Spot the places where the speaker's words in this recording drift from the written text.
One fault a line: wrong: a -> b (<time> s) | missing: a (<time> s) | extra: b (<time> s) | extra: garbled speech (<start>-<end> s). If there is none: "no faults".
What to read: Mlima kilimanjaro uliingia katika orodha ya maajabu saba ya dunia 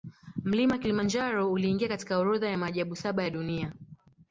no faults